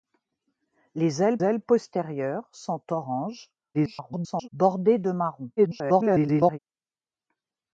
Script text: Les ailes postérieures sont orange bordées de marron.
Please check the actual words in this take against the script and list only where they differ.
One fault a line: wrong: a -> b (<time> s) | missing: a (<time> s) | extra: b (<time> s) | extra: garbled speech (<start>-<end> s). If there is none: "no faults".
extra: ailes (1.4 s)
extra: garbled speech (3.7-4.5 s)
extra: garbled speech (5.6-6.6 s)